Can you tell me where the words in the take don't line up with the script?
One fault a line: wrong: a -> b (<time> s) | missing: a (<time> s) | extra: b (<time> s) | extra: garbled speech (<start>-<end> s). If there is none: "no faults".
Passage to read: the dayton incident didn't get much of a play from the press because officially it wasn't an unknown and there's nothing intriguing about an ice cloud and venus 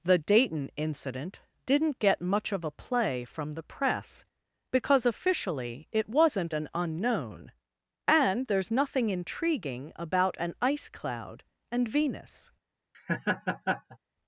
no faults